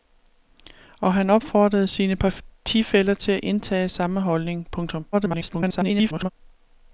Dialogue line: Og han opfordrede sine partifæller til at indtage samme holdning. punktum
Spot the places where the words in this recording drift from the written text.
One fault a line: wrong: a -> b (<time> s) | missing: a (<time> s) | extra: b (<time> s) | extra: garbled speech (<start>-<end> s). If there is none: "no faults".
extra: garbled speech (5.1-6.3 s)